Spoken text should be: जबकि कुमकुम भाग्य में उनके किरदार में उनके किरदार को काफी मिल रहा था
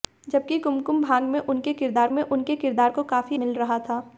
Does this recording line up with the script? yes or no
yes